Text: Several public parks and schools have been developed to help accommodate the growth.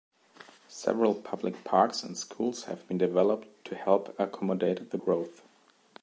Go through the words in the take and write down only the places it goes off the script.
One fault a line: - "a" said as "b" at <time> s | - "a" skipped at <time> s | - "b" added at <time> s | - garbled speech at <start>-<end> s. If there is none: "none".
none